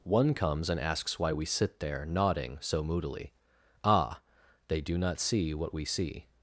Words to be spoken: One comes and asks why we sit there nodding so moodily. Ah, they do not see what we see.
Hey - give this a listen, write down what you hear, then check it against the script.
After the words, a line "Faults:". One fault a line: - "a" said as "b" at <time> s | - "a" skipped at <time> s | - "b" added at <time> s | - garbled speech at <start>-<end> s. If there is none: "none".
One comes and asks why we sit there nodding so moodily. Ah, they do not see what we see.
Faults:
none